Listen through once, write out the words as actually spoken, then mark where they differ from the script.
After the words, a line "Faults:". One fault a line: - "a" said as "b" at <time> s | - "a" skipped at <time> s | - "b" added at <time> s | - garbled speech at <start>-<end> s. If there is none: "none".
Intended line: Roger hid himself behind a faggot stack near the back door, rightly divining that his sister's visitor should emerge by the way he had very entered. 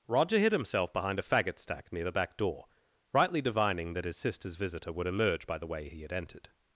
Roger hid himself behind a faggot stack near the back door, rightly divining that his sister's visitor would emerge by the way he had entered.
Faults:
- "should" said as "would" at 4.9 s
- "very" skipped at 6.1 s